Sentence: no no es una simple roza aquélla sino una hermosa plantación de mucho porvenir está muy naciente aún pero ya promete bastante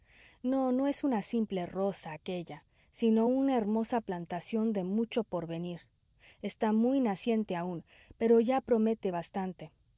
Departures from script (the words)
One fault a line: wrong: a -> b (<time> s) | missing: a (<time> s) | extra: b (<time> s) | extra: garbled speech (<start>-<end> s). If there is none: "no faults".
no faults